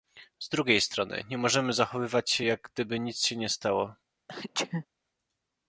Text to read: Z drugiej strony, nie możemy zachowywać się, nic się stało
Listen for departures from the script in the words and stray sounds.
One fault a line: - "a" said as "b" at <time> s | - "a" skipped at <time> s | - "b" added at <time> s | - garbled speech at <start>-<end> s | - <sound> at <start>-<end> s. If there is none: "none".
- "jak gdyby" added at 2.4 s
- "nie" added at 3.4 s
- sneeze at 4.3-4.9 s